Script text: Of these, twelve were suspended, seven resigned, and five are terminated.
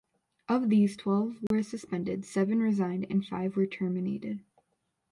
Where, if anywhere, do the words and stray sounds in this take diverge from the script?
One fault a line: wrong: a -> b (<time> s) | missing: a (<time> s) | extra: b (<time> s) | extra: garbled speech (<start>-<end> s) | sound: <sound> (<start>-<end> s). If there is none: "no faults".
sound: dropout (1.5-1.5 s)
wrong: are -> were (3.6 s)